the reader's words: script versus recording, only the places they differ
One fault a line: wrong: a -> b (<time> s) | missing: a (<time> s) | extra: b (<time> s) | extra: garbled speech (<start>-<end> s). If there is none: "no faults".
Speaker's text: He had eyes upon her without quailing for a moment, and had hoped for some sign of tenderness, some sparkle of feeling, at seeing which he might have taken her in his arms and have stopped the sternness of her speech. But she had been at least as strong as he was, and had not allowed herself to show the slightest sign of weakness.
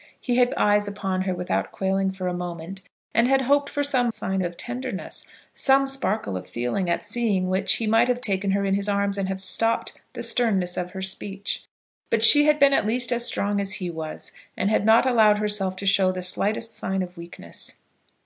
no faults